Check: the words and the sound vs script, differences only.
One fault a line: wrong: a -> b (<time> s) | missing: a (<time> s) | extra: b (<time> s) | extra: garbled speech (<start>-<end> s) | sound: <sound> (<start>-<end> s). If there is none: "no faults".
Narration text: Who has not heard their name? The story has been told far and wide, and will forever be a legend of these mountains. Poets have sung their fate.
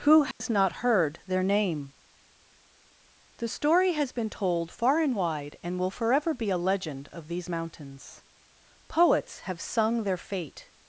sound: dropout (0.3-0.4 s)